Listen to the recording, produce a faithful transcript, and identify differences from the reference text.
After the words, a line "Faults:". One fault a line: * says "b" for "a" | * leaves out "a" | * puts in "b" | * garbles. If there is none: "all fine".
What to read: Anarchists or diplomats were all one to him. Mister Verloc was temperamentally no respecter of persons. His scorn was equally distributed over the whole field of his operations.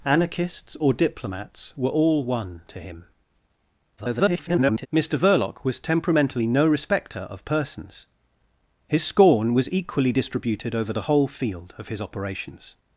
Anarchists or diplomats were all one to him. [garbled] Mister Verloc was temperamentally no respecter of persons. His scorn was equally distributed over the whole field of his operations.
Faults:
* garbles